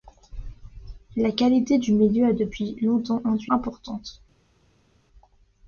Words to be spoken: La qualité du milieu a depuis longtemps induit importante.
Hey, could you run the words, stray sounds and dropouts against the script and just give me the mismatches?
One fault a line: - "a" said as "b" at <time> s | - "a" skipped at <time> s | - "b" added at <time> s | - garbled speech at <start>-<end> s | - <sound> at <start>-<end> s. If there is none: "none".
none